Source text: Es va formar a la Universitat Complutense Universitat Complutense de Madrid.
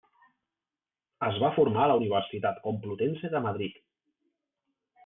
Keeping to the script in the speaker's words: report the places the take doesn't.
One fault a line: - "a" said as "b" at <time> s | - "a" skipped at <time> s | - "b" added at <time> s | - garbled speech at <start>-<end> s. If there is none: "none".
- "Universitat Complutense" skipped at 3.4 s